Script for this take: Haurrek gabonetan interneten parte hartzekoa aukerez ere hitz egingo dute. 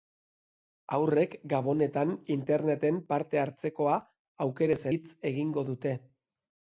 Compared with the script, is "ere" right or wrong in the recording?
wrong